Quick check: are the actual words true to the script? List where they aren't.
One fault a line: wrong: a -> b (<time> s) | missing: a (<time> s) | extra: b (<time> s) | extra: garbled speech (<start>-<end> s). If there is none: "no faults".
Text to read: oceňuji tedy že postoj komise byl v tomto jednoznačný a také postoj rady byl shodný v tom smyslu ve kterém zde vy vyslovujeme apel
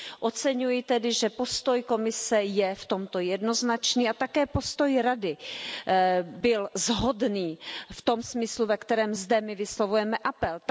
wrong: byl -> je (2.4 s)
wrong: vy -> my (9.4 s)